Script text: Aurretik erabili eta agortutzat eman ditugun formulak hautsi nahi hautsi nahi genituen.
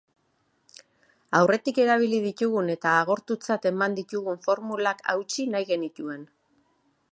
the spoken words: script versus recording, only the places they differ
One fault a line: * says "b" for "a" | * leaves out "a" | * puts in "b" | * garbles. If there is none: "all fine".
* puts in "ditugun"
* leaves out "hautsi nahi"